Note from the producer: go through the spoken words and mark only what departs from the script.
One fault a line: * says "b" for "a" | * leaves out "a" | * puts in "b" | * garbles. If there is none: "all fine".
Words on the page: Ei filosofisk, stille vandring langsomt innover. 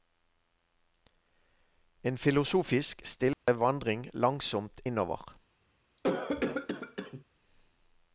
* says "En" for "Ei"